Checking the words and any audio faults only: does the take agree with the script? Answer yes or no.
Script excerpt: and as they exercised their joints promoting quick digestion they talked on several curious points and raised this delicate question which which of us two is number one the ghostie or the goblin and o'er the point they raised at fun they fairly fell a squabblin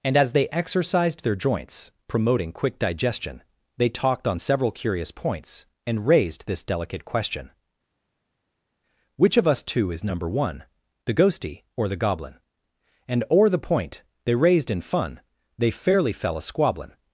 no